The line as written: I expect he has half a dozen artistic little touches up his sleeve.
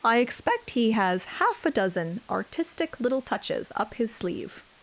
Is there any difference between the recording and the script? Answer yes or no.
no